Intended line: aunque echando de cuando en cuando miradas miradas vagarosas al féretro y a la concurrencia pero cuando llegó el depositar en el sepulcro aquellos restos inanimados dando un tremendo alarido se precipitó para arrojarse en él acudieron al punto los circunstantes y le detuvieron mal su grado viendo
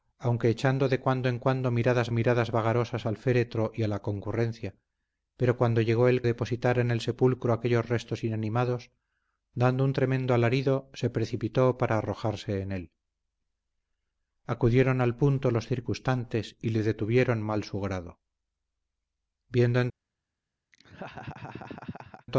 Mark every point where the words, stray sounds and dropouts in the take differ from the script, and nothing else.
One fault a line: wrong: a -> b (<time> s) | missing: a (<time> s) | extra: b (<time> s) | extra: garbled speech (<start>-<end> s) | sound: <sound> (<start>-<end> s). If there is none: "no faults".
sound: laugh (20.7-22.3 s)